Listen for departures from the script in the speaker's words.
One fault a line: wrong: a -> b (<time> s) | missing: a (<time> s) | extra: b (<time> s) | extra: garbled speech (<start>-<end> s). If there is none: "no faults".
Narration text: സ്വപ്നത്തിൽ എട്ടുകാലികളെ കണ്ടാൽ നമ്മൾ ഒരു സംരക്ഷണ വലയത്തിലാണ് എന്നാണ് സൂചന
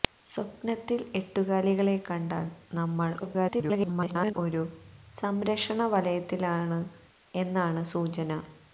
extra: garbled speech (3.2-4.3 s)